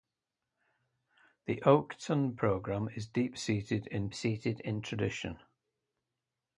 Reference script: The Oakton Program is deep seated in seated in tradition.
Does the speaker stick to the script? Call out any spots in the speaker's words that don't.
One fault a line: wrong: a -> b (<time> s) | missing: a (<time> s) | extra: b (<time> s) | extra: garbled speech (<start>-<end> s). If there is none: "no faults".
no faults